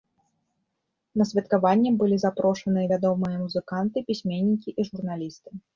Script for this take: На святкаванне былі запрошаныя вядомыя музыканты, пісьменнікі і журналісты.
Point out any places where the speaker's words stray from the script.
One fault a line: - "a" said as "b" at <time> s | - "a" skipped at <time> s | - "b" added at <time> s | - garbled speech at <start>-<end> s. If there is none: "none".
none